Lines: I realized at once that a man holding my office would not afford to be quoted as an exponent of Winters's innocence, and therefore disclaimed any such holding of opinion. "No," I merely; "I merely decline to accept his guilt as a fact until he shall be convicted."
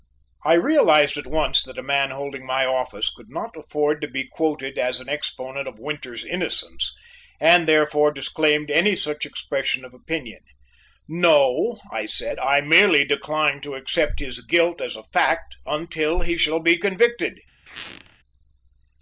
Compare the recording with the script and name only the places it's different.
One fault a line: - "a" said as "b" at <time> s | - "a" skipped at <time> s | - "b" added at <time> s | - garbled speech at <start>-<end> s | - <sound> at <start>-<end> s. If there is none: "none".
- "would" said as "could" at 3.1 s
- "holding" said as "expression" at 9.3 s
- "merely" said as "said" at 12.1 s
- squeak at 17.7-18.2 s